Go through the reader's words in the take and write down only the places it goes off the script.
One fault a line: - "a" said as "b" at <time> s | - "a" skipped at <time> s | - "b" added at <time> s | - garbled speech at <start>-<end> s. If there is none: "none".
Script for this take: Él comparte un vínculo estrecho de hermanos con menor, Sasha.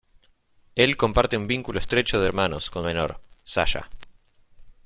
none